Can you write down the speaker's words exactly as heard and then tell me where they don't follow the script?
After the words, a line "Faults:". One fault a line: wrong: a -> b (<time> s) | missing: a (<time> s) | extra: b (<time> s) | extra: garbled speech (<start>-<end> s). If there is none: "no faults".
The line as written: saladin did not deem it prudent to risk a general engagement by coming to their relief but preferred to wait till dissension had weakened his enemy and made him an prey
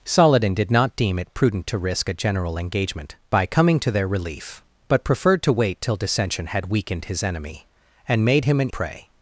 saladin did not deem it prudent to risk a general engagement by coming to their relief but preferred to wait till dissension had weakened his enemy and made him an prey
Faults:
no faults